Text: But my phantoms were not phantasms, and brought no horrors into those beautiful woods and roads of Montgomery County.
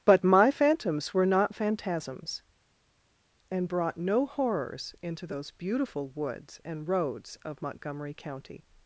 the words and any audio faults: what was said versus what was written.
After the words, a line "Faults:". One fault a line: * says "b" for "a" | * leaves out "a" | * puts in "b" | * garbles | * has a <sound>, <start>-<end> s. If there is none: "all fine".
But my phantoms were not phantasms, and brought no horrors into those beautiful woods and roads of Montgomery County.
Faults:
all fine